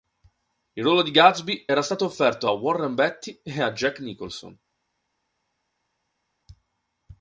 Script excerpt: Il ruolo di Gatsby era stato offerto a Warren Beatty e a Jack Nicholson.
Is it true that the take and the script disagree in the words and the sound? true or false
false